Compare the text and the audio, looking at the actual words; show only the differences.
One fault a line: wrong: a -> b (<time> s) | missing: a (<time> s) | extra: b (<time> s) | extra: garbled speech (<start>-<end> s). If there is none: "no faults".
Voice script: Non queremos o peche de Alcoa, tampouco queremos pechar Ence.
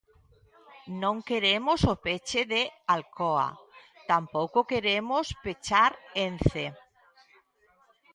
no faults